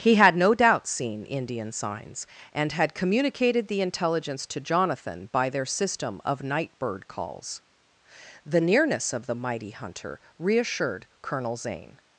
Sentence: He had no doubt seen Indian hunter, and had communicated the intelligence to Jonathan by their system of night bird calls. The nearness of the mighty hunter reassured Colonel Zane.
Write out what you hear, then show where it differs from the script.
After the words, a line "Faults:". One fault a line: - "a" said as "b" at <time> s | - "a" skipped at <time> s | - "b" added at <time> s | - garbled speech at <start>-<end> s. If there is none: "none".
He had no doubt seen Indian signs, and had communicated the intelligence to Jonathan by their system of night bird calls. The nearness of the mighty hunter reassured Colonel Zane.
Faults:
- "hunter" said as "signs" at 1.7 s